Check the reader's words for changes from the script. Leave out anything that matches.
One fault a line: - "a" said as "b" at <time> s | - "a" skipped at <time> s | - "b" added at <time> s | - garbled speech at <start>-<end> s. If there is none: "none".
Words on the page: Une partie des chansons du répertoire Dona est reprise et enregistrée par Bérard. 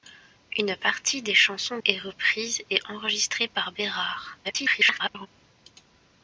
- "du répertoire Dona" skipped at 1.8 s
- garbled speech at 4.4-5.3 s